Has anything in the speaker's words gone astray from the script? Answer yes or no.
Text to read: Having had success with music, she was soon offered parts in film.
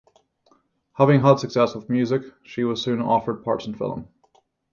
no